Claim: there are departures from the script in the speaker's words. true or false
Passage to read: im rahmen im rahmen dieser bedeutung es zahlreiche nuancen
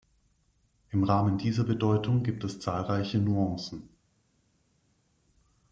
true